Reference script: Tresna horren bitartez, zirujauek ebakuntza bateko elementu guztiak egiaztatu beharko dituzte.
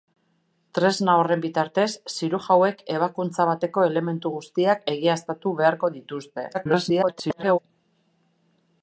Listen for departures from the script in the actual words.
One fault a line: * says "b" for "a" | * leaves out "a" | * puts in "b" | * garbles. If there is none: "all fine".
* garbles